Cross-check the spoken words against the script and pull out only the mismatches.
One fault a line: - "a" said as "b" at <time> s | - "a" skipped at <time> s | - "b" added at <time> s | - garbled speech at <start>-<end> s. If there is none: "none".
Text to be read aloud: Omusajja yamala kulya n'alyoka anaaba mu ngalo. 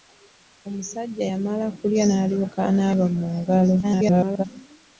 - garbled speech at 3.8-4.4 s